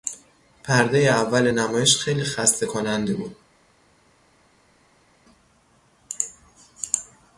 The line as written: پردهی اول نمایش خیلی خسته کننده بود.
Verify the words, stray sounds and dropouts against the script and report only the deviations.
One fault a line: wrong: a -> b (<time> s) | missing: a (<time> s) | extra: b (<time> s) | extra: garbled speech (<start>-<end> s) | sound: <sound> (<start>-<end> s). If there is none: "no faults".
no faults